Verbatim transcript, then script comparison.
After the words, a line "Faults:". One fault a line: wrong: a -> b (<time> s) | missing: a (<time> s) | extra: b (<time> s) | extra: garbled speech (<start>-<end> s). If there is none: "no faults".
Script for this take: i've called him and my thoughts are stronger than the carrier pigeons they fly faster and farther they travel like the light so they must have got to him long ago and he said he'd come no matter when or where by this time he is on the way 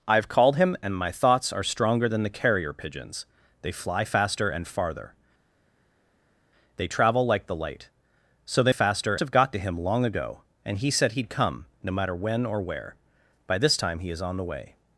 i've called him and my thoughts are stronger than the carrier pigeons they fly faster and farther they travel like the light so they faster have got to him long ago and he said he'd come no matter when or where by this time he is on the way
Faults:
wrong: must -> faster (8.7 s)